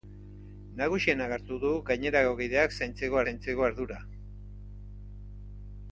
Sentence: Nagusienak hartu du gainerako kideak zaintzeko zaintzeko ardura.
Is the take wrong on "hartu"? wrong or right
right